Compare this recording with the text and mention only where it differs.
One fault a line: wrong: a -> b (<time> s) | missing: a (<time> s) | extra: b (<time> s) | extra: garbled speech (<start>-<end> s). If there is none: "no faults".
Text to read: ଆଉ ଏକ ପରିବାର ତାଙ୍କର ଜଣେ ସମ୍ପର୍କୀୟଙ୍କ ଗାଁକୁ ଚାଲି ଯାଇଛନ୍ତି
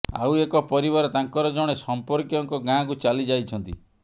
no faults